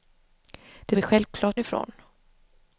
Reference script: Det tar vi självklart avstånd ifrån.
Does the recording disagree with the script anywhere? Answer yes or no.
yes